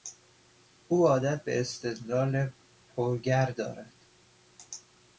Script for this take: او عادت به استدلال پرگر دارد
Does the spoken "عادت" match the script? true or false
true